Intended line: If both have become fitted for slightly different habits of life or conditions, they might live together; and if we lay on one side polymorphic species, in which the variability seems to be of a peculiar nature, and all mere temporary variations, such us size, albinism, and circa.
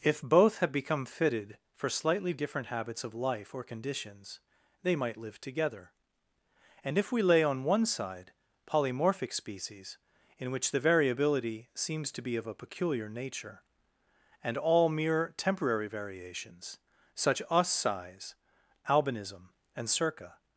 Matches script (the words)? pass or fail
pass